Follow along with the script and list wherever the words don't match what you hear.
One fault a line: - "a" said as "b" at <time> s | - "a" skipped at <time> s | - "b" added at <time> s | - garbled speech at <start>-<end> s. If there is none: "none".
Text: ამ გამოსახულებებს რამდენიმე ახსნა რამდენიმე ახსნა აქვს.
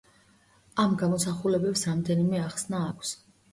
- "რამდენიმე ახსნა" skipped at 2.8 s